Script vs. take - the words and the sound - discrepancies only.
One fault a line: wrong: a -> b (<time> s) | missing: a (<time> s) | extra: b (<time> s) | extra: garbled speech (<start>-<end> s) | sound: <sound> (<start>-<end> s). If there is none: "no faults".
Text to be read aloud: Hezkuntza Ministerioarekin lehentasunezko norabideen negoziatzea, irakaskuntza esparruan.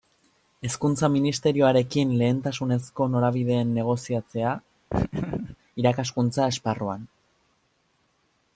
sound: laugh (4.9-5.6 s)